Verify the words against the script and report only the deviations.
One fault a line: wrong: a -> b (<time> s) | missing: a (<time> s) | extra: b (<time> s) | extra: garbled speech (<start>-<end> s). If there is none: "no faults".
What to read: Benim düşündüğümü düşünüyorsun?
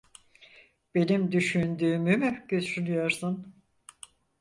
extra: mü (2.2 s)